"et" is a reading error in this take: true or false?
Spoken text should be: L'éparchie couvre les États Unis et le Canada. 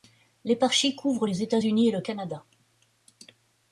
false